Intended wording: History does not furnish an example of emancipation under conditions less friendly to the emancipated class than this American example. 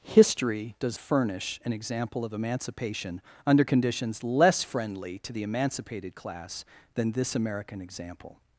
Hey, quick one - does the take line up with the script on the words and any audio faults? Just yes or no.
no